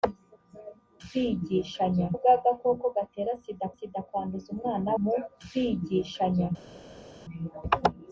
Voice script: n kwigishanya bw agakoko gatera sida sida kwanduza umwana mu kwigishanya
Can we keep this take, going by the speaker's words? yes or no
yes